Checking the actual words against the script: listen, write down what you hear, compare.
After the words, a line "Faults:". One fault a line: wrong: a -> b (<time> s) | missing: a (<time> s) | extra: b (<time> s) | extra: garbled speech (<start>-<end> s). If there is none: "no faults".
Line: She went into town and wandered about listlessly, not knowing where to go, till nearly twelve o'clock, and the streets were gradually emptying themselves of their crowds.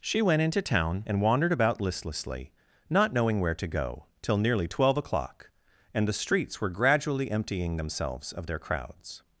She went into town and wandered about listlessly, not knowing where to go, till nearly twelve o'clock, and the streets were gradually emptying themselves of their crowds.
Faults:
no faults